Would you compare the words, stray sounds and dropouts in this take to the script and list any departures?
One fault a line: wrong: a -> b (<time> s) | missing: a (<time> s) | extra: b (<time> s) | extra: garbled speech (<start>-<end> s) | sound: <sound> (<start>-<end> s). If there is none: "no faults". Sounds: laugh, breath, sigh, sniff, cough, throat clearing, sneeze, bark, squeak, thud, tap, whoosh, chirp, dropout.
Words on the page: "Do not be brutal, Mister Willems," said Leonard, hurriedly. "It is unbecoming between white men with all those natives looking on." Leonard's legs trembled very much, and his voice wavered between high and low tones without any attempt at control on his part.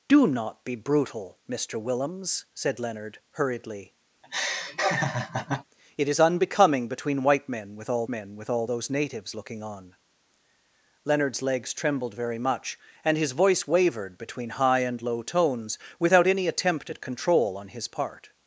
sound: laugh (4.2-5.6 s)
extra: men with all (8.1 s)